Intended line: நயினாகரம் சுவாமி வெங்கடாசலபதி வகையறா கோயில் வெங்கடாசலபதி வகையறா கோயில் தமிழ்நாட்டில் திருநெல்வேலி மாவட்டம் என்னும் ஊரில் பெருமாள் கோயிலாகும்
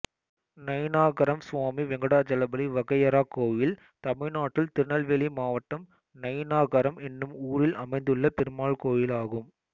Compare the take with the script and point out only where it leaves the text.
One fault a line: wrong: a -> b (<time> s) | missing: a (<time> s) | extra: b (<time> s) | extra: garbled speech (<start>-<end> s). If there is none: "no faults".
missing: வெங்கடாசலபதி வகையறா கோயில் (3.8 s)
extra: நயினாகரம் (6.2 s)
extra: அமைந்துள்ள (7.8 s)